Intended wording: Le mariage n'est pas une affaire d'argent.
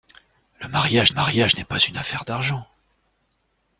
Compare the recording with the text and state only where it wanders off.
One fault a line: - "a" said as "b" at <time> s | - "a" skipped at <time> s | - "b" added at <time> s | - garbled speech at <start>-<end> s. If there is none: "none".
- "mariage" added at 1.1 s